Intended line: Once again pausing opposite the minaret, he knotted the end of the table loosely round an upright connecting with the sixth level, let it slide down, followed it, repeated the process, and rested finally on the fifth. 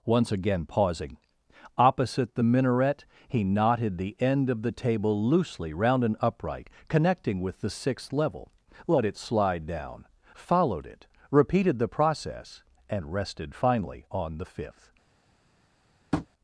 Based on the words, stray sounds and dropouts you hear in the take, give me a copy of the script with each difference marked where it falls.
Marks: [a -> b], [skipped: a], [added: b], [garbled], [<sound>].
Once again pausing opposite the minaret, he knotted the end of the table loosely round an upright connecting with the sixth level, let it slide down, followed it, repeated the process, and rested finally on the fifth. [tap]